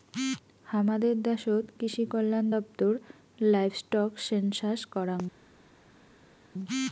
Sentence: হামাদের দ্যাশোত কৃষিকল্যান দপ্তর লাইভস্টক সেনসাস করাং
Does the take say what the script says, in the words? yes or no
yes